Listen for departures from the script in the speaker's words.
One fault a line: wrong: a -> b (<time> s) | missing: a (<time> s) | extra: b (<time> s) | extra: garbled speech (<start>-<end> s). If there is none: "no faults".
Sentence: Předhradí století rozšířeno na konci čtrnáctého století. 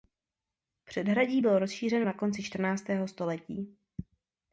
wrong: století -> bylo (1.4 s)